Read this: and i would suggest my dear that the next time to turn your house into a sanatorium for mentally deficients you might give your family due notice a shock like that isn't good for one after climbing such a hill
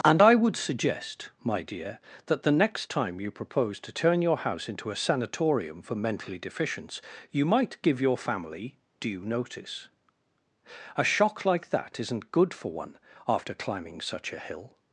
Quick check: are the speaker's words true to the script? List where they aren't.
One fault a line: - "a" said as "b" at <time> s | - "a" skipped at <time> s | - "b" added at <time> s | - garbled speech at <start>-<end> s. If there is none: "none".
- "you propose" added at 3.2 s